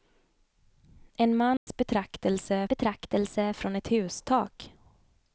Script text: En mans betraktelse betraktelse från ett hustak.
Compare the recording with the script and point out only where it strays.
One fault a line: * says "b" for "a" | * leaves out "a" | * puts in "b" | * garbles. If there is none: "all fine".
all fine